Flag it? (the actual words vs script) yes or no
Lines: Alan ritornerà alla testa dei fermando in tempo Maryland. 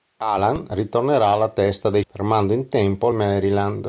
no